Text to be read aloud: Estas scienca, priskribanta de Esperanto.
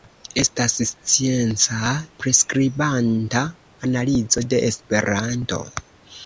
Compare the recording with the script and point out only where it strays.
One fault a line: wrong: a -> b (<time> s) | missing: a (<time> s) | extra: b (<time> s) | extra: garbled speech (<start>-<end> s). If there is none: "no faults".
extra: analizo (3.9 s)